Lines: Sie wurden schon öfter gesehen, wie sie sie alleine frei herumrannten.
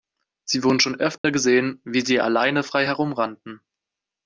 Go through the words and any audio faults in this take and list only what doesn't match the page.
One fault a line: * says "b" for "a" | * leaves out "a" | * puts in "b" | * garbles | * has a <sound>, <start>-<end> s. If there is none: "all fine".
* has a dropout, 1.2-1.2 s
* leaves out "sie"